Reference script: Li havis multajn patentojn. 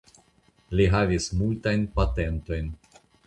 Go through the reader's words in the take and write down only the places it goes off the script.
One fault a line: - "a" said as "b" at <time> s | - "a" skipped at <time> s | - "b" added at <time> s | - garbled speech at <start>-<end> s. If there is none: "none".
none